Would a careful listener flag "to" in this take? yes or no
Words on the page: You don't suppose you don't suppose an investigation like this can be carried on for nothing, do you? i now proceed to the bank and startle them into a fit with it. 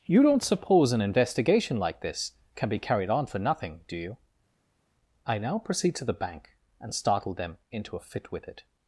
no